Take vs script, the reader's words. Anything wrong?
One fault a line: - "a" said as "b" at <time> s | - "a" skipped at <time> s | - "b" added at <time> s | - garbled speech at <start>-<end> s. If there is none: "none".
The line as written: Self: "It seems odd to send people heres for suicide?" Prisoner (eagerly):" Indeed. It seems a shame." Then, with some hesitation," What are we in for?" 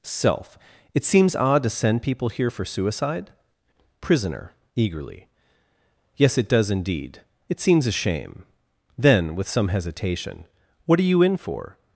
- "heres" said as "here" at 2.3 s
- "Yes it does" added at 6.2 s
- "we" said as "you" at 11.1 s